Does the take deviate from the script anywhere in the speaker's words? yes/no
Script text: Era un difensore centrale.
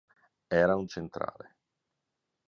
yes